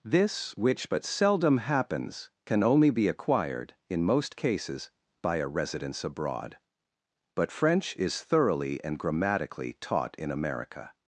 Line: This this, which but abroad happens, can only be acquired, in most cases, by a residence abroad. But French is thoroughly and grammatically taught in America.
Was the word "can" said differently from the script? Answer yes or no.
no